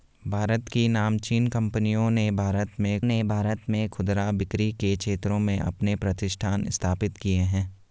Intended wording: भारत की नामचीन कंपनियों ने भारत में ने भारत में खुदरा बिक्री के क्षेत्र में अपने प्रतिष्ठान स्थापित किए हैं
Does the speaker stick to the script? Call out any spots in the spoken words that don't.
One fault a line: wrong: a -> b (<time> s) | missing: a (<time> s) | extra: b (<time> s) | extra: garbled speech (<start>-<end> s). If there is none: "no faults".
no faults